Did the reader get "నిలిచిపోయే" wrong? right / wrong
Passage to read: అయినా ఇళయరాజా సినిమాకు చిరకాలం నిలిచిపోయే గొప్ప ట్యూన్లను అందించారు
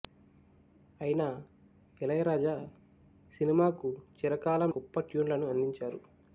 wrong